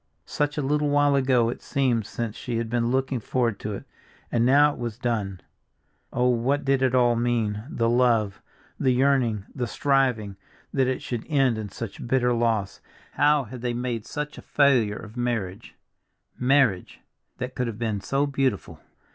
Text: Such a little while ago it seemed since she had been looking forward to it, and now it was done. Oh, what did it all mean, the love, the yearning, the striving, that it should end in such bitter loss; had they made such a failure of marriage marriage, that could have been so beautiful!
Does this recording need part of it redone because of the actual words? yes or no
yes